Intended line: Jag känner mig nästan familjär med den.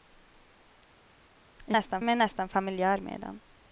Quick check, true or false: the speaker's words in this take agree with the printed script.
false